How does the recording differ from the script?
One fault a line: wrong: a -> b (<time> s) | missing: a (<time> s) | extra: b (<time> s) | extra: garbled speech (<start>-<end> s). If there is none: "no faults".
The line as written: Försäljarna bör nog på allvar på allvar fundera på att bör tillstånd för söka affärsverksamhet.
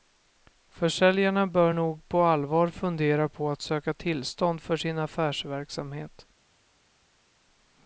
missing: på allvar (2.7 s)
wrong: bör -> söka (3.6 s)
wrong: söka -> sin (4.8 s)